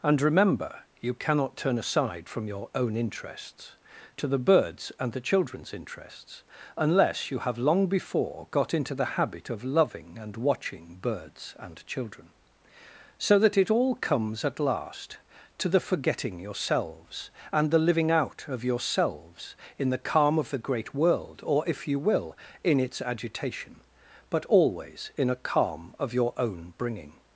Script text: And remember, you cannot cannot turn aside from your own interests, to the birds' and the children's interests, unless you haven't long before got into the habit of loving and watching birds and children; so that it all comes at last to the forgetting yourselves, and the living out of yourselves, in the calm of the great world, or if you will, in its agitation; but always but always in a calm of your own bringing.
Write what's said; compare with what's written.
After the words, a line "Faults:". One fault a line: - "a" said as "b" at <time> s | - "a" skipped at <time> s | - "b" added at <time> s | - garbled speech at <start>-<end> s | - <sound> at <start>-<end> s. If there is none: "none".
And remember, you cannot turn aside from your own interests, to the birds' and the children's interests, unless you have long before got into the habit of loving and watching birds and children; so that it all comes at last to the forgetting yourselves, and the living out of yourselves, in the calm of the great world, or if you will, in its agitation; but always in a calm of your own bringing.
Faults:
- "cannot" skipped at 1.6 s
- "haven't" said as "have" at 7.4 s
- "but always" skipped at 25.1 s